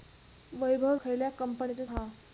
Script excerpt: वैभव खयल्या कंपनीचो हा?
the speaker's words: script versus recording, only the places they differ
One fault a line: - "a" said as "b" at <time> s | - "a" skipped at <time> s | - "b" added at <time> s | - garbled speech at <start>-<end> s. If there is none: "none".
none